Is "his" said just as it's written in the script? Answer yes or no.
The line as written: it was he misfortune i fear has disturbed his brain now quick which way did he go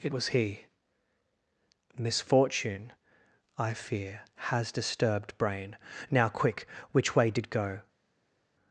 no